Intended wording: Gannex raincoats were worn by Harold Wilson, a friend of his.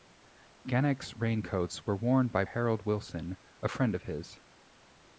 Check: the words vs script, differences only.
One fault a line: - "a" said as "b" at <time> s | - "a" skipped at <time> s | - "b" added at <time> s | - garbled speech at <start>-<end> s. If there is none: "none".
none